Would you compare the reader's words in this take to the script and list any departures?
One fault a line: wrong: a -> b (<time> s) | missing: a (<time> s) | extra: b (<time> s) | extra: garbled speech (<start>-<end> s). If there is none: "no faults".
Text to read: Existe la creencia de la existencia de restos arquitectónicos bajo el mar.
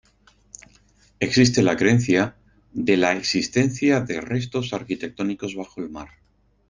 no faults